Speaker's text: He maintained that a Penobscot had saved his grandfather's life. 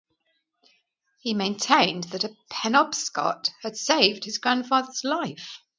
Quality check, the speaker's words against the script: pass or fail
pass